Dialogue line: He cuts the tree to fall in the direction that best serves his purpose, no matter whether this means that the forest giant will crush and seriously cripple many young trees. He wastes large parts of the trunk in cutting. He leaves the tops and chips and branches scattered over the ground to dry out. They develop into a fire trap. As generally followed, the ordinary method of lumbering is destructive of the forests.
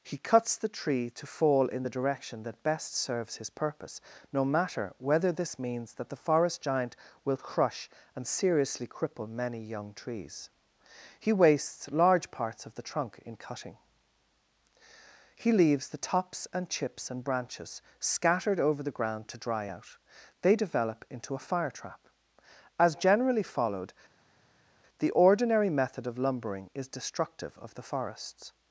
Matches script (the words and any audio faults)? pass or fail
pass